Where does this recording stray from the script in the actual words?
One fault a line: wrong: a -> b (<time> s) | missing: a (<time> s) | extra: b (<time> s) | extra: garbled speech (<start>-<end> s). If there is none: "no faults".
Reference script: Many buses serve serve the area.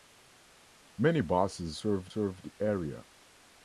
no faults